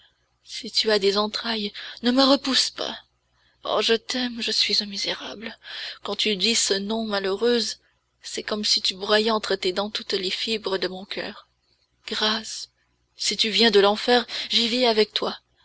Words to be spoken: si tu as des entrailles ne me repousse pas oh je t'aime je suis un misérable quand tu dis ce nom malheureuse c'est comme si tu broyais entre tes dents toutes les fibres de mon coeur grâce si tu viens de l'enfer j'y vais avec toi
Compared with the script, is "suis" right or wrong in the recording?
right